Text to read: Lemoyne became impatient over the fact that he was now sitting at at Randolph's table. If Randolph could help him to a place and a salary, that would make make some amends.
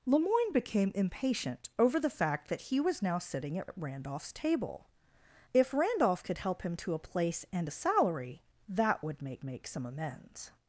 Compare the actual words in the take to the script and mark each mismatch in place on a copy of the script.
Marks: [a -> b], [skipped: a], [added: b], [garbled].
Lemoyne became impatient over the fact that he was now sitting at at Randolph's table. If Randolph could help him to a place and a salary, that would make make some amends.